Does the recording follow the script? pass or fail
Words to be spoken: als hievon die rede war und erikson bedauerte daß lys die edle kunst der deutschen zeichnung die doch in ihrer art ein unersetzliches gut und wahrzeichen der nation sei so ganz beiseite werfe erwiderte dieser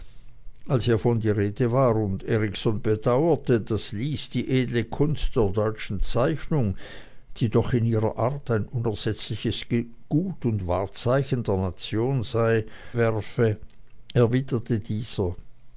fail